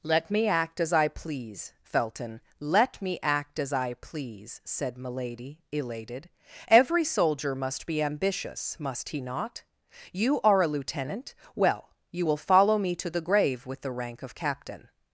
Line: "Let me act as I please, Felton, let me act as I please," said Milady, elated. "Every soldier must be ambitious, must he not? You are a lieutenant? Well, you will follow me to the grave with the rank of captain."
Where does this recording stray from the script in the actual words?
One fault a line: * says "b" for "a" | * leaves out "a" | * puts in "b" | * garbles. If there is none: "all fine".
all fine